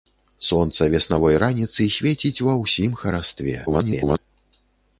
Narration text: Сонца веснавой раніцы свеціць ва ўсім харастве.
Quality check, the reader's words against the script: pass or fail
fail